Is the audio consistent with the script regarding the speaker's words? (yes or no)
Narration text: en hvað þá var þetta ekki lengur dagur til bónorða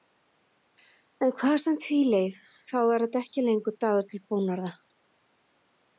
no